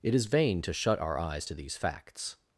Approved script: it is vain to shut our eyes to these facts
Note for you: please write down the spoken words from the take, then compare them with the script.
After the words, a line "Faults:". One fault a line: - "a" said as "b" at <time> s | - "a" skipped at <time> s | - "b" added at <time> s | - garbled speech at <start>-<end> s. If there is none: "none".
it is vain to shut our eyes to these facts
Faults:
none